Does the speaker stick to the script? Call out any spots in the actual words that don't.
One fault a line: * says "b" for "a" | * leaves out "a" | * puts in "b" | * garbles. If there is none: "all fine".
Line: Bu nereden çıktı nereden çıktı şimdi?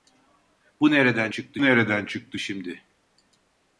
all fine